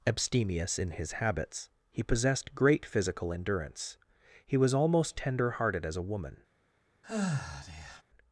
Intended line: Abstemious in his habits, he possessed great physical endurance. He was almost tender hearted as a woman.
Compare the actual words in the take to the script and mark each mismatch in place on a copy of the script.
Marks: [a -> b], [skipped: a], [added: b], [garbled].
Abstemious in his habits, he possessed great physical endurance. He was almost tender hearted as a woman.